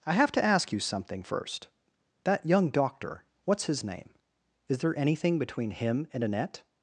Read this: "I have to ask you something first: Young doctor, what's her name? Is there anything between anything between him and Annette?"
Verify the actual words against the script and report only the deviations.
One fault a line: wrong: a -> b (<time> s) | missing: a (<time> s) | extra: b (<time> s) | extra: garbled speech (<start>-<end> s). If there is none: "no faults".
extra: That (2.2 s)
wrong: her -> his (3.6 s)
missing: anything between (5.7 s)